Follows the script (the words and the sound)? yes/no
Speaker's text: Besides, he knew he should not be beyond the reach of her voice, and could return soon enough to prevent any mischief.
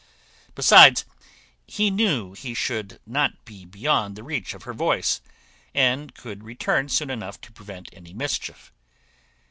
yes